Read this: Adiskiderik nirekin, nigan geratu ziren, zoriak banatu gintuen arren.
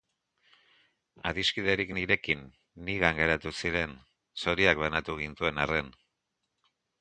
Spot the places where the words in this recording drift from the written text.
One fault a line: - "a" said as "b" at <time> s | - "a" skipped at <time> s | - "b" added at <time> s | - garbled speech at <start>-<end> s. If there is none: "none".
none